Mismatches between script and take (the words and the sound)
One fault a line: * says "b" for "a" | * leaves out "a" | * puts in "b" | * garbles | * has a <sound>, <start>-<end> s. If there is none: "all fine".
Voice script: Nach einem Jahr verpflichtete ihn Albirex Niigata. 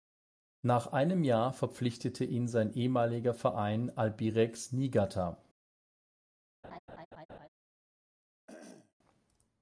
* puts in "sein ehemaliger Verein"
* has a laugh, 6.6-7.5 s
* has a throat clearing, 8.5-8.9 s